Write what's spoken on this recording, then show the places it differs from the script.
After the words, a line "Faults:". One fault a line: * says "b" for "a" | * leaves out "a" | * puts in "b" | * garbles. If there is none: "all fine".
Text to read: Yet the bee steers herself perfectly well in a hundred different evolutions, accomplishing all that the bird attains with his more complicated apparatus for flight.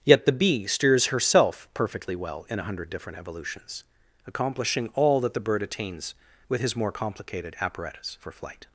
Yet the bee steers herself perfectly well in a hundred different evolutions, accomplishing all that the bird attains with his more complicated apparatus for flight.
Faults:
all fine